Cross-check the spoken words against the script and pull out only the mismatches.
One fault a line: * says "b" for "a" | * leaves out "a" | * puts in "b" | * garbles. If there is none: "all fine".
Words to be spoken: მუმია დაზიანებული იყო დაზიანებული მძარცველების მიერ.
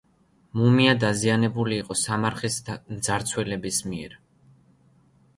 * says "სამარხის" for "დაზიანებული"